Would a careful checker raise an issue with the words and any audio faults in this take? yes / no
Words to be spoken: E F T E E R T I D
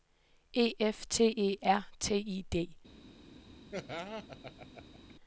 yes